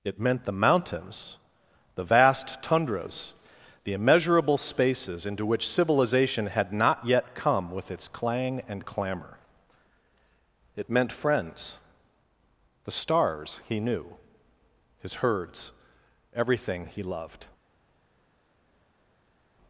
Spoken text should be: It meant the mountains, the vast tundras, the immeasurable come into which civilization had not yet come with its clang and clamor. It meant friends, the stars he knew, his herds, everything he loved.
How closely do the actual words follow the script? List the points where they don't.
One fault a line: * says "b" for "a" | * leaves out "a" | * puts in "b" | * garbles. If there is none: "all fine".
* says "spaces" for "come"